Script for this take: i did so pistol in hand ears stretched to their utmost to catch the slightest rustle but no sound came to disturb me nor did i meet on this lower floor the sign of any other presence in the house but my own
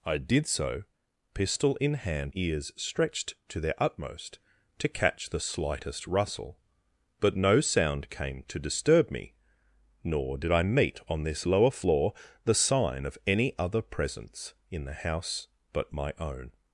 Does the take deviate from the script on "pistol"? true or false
false